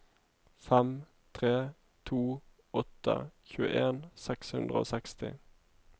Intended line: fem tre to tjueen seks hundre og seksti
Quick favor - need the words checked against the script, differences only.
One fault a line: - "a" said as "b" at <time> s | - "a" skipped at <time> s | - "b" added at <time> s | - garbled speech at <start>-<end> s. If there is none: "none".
- "åtte" added at 2.8 s